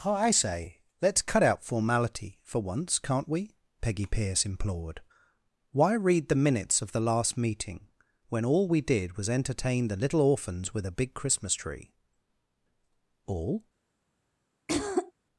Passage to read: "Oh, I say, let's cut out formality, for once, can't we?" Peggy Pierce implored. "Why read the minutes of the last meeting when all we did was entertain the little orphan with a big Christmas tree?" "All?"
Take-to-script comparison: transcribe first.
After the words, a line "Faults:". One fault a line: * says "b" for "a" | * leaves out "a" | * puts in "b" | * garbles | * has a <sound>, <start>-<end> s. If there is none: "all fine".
"Oh, I say, let's cut out formality, for once, can't we?" Peggy Pierce implored. "Why read the minutes of the last meeting when all we did was entertain the little orphans with a big Christmas tree?" "All?"
Faults:
* says "orphans" for "orphan"
* has a throat clearing, 14.7-15.1 s